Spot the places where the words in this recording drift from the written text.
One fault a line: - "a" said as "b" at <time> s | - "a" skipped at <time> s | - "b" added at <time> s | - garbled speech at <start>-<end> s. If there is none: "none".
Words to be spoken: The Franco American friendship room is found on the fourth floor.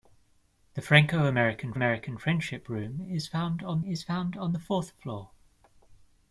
- "American" added at 1.7 s
- "is found on" added at 3.9 s